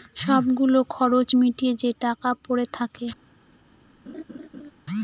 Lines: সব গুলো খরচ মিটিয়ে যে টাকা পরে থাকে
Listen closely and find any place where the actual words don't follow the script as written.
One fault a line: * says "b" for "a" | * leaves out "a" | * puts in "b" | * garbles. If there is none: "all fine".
all fine